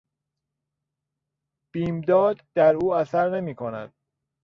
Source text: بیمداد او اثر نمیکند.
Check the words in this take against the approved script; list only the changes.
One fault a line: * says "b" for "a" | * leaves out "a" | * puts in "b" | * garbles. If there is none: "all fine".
* puts in "در"